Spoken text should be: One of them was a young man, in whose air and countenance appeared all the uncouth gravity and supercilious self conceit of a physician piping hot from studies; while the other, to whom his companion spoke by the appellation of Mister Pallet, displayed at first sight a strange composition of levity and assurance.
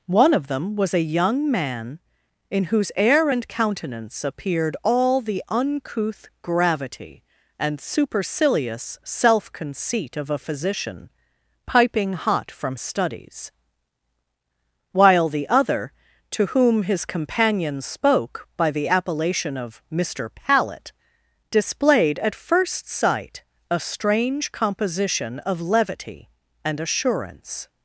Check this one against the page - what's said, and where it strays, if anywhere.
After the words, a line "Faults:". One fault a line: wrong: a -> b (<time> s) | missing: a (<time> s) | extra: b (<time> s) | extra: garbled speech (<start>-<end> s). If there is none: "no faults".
One of them was a young man, in whose air and countenance appeared all the uncouth gravity and supercilious self conceit of a physician piping hot from studies; while the other, to whom his companion spoke by the appellation of Mister Pallet, displayed at first sight a strange composition of levity and assurance.
Faults:
no faults